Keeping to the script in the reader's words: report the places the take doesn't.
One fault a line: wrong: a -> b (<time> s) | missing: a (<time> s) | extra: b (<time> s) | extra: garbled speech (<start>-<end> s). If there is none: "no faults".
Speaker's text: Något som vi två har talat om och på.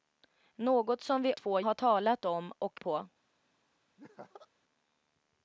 no faults